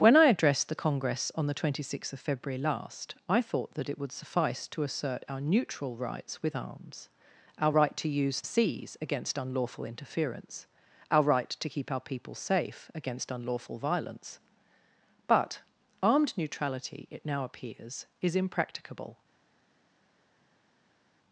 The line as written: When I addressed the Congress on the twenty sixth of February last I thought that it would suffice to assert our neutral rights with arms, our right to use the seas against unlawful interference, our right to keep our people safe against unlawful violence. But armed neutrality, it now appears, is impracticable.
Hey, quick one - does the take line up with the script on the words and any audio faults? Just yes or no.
no